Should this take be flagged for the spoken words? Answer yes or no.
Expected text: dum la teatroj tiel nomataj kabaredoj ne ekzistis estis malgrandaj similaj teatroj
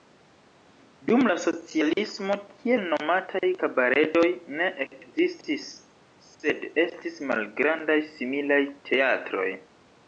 yes